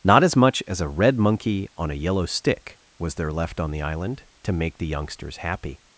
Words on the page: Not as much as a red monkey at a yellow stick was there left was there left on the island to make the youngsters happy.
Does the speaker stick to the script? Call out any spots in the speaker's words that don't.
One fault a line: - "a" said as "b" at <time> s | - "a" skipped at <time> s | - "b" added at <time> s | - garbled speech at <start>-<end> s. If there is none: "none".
- "at" said as "on" at 1.8 s
- "was there left" skipped at 3.6 s